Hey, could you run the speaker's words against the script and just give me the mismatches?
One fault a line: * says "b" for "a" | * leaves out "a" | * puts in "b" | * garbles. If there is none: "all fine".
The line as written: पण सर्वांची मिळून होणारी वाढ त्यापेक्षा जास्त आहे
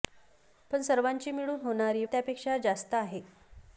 * leaves out "वाढ"